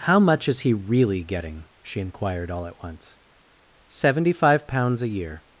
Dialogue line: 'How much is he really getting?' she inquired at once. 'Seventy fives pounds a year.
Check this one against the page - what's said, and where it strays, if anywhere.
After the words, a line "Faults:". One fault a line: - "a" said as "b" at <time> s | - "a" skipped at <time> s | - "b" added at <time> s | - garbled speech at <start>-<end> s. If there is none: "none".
'How much is he really getting?' she inquired all at once. 'Seventy five pounds a year.
Faults:
- "all" added at 2.5 s
- "fives" said as "five" at 4.3 s